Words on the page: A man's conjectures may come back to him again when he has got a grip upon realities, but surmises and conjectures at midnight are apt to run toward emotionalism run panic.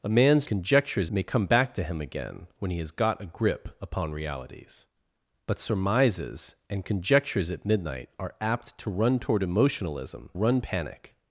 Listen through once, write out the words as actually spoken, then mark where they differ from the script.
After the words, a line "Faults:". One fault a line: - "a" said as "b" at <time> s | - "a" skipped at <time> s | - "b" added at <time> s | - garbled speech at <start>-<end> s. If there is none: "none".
A man's conjectures may come back to him again when he has got a grip upon realities, but surmises and conjectures at midnight are apt to run toward emotionalism run panic.
Faults:
none